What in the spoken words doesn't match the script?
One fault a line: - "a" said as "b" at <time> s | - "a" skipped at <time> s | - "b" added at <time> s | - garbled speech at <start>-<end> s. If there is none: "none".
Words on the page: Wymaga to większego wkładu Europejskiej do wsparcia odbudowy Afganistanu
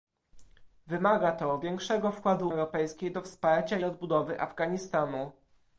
none